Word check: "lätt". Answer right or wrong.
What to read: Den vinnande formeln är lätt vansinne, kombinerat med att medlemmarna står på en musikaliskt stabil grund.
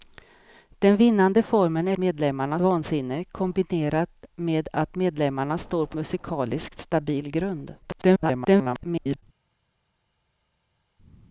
wrong